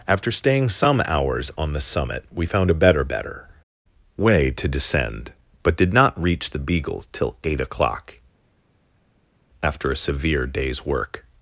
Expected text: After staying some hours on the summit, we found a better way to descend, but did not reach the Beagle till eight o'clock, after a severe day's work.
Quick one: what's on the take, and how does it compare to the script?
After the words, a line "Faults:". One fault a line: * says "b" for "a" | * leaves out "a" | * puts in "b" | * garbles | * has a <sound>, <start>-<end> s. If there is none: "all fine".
After staying some hours on the summit, we found a better better way to descend, but did not reach the Beagle till eight o'clock, after a severe day's work.
Faults:
* puts in "better"